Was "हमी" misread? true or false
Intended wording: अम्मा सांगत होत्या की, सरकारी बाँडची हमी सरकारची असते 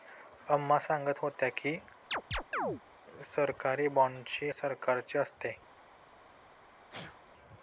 true